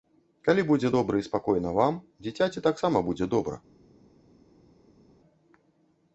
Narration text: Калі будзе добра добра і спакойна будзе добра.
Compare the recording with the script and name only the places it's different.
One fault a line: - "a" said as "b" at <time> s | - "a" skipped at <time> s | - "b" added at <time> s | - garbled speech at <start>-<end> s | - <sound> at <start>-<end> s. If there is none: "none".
- "добра" skipped at 1.2 s
- "вам дзіцяці таксама" added at 1.8 s